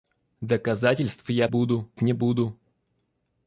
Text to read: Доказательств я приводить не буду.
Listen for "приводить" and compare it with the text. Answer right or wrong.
wrong